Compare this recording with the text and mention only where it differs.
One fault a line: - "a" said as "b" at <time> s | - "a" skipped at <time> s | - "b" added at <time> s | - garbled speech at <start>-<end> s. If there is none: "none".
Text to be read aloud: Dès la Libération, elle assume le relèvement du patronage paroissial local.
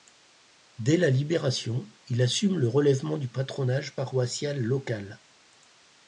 - "elle" said as "il" at 2.1 s